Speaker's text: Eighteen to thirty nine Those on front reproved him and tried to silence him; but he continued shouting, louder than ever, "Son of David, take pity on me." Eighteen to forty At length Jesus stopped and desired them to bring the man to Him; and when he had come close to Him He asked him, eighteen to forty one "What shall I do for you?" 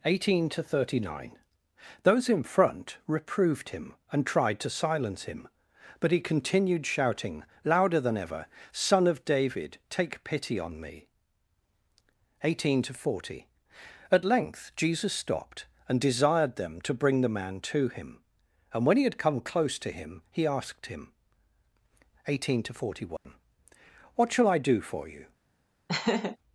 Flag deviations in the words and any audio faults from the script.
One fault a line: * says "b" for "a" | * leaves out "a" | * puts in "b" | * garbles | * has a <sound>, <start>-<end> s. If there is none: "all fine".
* says "in" for "on"
* has a dropout, 23.2-23.3 s
* has a laugh, 25.9-26.4 s